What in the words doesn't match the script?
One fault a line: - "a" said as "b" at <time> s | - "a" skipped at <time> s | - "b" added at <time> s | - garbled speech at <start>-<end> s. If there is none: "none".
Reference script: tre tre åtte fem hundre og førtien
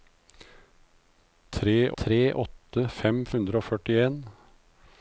none